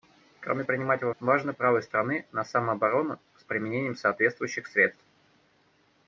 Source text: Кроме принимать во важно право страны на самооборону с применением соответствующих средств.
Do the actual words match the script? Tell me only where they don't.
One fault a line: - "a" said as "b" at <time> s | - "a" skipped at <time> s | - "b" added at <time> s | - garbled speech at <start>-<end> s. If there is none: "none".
none